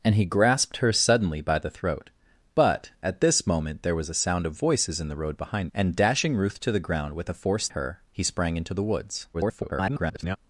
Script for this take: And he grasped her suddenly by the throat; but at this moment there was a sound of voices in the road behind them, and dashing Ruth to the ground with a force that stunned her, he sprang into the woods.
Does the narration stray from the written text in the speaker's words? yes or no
yes